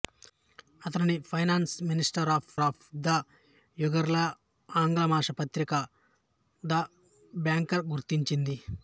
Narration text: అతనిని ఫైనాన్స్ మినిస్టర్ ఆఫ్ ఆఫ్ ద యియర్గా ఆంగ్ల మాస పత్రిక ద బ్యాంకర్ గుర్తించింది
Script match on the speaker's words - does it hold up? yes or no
yes